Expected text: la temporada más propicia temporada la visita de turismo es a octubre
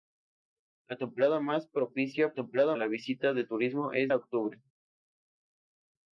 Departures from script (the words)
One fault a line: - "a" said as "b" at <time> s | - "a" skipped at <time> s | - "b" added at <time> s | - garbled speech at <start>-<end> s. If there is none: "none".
none